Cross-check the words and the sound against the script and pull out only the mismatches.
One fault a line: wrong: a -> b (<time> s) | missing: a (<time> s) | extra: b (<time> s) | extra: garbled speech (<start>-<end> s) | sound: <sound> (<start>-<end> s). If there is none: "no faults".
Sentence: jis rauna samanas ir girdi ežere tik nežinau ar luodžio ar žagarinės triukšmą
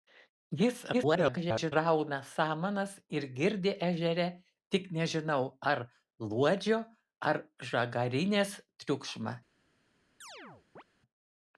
extra: garbled speech (0.9-1.7 s)
sound: chirp (10.2-10.8 s)